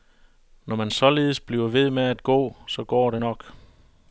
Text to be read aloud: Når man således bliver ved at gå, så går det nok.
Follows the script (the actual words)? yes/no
no